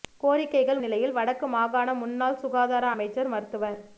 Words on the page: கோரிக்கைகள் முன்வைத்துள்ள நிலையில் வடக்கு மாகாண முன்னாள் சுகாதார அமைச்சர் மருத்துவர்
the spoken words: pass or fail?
fail